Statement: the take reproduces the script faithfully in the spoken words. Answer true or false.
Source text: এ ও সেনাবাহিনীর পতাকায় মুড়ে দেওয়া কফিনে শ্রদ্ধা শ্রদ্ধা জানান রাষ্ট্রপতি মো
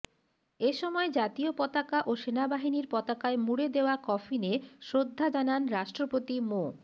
false